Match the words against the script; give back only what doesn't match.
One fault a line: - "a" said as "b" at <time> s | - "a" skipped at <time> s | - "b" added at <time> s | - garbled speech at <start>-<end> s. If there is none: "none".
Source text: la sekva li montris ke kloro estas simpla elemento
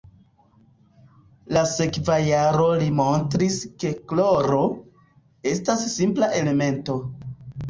- "jaro" added at 2.3 s